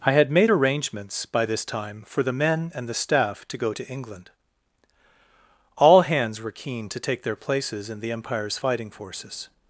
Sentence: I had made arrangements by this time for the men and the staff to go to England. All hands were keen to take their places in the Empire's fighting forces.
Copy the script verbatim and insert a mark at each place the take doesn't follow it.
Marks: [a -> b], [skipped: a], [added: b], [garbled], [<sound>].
I had made arrangements by this time for the men and the staff to go to England. All hands were keen to take their places in the Empire's fighting forces.